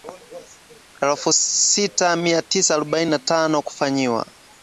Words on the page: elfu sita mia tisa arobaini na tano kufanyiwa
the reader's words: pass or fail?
pass